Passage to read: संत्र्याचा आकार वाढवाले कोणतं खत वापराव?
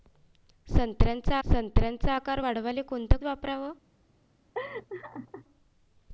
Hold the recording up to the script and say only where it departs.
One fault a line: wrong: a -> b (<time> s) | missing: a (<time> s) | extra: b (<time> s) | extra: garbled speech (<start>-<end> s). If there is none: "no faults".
extra: संत्र्याचा (1.4 s)
missing: खत (3.2 s)